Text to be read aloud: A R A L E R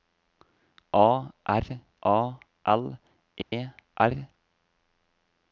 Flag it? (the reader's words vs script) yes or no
no